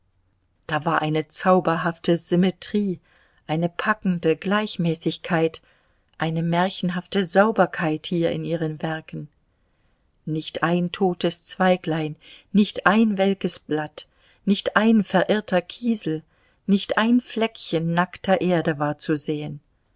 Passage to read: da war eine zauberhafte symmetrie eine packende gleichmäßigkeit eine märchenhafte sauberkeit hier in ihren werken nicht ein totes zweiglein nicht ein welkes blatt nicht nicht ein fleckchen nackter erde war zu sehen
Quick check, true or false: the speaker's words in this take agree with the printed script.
false